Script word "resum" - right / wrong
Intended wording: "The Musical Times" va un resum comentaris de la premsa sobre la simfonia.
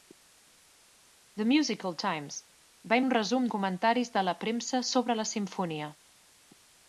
right